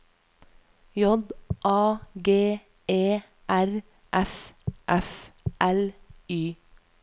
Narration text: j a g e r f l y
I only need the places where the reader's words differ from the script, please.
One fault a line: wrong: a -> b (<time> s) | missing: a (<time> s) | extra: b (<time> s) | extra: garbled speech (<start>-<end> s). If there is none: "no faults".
extra: f (4.9 s)